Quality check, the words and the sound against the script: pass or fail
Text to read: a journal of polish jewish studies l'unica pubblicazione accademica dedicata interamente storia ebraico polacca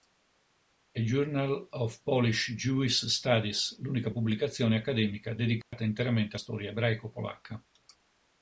fail